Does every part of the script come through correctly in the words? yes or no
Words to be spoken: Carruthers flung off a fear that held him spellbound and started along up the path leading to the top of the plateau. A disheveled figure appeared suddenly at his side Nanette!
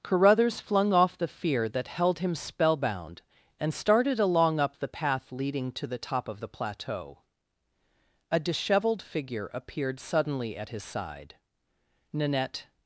no